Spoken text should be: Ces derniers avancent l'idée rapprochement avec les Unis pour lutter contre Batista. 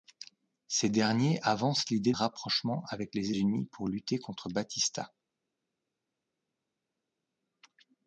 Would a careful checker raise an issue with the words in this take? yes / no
no